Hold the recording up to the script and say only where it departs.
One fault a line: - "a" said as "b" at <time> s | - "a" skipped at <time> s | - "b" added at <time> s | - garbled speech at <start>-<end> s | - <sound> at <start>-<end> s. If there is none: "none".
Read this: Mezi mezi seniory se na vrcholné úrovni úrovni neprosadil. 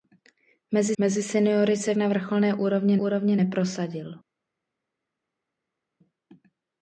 none